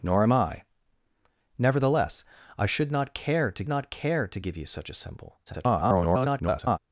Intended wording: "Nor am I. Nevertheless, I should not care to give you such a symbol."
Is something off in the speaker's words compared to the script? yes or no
yes